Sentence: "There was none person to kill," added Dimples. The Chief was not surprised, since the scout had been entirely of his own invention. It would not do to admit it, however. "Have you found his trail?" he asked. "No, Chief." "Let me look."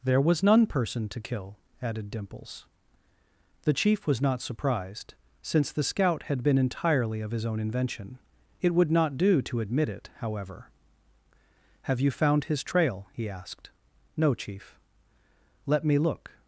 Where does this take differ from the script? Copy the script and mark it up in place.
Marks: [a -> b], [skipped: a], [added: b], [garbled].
"There was none person to kill," added Dimples. The Chief was not surprised, since the scout had been entirely of his own invention. It would not do to admit it, however. "Have you found his trail?" he asked. "No, Chief." "Let me look."